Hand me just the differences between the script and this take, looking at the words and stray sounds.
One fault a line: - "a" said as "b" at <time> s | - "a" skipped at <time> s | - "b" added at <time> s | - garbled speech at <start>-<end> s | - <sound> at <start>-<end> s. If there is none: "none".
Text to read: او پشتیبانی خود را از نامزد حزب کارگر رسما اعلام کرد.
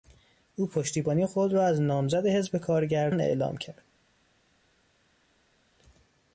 - "رسما" skipped at 3.1 s